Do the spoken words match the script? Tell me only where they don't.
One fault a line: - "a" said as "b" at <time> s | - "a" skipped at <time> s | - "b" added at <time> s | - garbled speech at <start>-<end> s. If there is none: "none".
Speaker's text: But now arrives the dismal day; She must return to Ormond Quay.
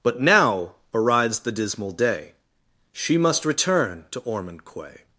none